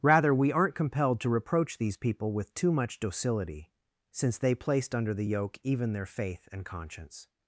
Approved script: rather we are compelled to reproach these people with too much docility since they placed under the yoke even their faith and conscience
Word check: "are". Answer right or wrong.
wrong